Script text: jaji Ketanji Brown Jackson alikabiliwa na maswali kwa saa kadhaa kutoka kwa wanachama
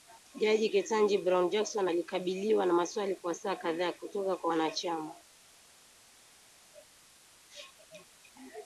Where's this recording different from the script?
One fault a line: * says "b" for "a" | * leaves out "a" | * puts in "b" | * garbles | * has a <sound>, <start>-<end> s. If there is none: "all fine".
all fine